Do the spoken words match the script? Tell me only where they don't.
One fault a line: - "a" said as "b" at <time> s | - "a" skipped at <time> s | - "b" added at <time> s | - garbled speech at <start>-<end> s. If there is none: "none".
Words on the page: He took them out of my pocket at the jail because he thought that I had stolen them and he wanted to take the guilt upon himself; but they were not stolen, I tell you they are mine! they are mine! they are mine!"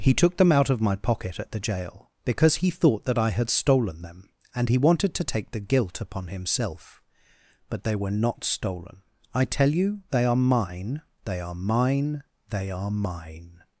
none